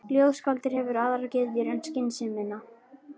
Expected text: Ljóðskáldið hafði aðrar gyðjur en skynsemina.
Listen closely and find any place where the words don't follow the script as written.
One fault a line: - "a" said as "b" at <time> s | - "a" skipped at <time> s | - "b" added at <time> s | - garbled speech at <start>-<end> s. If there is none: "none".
- "hafði" said as "hefur" at 0.8 s